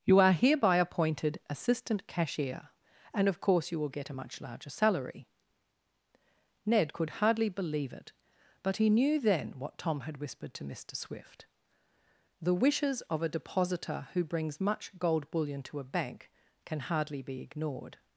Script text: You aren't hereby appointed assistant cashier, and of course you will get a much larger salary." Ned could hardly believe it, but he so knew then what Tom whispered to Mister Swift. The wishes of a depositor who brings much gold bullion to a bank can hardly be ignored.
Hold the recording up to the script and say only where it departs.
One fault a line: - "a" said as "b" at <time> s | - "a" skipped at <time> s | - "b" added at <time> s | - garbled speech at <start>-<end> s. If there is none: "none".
- "aren't" said as "are" at 0.2 s
- "so" skipped at 8.9 s
- "had" added at 10.0 s